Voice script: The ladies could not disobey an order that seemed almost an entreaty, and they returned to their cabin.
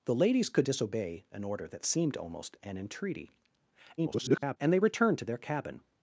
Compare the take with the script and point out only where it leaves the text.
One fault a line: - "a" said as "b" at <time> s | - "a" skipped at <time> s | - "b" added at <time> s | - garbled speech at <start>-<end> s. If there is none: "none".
- "not" skipped at 0.7 s
- garbled speech at 4.0-4.6 s